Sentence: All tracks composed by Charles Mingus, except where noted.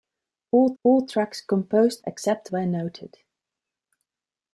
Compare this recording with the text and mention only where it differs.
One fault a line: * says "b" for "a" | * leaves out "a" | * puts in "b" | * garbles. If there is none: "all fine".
* puts in "all"
* leaves out "by Charles Mingus"